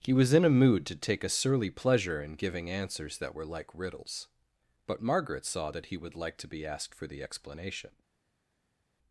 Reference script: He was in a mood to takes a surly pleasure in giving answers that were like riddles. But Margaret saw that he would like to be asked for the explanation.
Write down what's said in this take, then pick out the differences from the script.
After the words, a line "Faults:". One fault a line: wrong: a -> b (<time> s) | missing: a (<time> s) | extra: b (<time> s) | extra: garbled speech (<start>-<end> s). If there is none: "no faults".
He was in a mood to take a surly pleasure in giving answers that were like riddles. But Margaret saw that he would like to be asked for the explanation.
Faults:
wrong: takes -> take (0.9 s)